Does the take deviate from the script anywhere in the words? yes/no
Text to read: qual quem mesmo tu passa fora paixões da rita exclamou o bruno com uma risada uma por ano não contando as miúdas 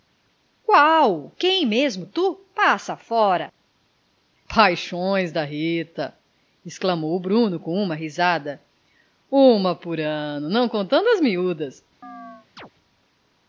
no